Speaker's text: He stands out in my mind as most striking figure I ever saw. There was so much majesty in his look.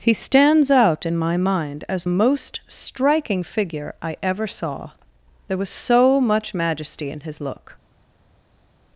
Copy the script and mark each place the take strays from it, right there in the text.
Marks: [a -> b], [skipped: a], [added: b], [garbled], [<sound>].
He stands out in my mind as most striking figure I ever saw. There was so much majesty in his look.